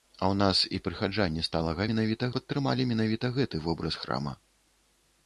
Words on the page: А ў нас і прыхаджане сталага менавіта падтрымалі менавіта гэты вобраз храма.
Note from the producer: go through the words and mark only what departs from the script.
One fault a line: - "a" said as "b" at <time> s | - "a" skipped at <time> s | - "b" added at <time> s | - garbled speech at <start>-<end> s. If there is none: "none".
none